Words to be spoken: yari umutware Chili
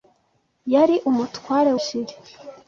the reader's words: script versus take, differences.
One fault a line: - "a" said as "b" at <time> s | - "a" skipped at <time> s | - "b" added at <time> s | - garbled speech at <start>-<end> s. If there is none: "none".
none